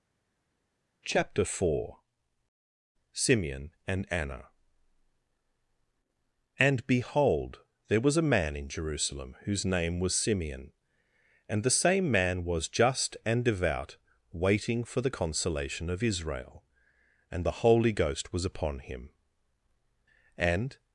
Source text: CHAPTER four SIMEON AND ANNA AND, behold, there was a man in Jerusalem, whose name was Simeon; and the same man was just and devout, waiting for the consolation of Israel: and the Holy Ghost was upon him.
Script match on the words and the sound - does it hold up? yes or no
no